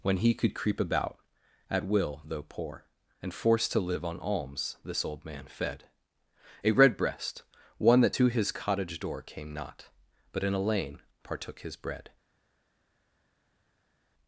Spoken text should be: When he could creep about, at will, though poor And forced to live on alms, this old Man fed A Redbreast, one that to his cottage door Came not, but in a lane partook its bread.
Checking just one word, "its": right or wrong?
wrong